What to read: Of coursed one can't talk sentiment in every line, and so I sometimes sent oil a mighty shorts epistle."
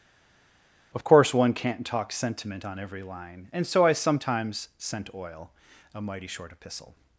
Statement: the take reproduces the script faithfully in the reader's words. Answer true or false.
false